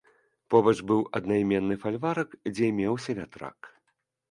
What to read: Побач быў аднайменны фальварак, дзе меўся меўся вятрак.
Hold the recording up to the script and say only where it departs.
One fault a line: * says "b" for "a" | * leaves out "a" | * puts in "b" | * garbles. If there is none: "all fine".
* leaves out "меўся"